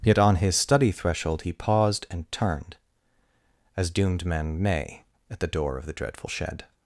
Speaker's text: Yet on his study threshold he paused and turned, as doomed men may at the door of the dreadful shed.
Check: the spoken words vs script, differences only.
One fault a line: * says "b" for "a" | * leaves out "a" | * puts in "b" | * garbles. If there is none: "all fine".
all fine